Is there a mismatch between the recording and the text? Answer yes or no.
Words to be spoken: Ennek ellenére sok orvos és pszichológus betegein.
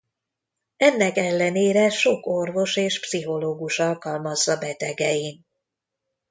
yes